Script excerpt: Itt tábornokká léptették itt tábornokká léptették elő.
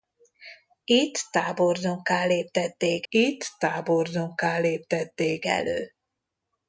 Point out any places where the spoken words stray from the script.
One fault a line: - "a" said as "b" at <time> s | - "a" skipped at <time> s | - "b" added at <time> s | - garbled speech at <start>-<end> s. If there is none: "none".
none